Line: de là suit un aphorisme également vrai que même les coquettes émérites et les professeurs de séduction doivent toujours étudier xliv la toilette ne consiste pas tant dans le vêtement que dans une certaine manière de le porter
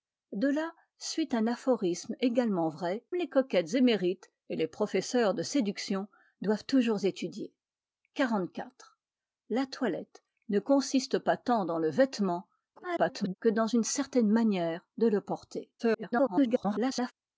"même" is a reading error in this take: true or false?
true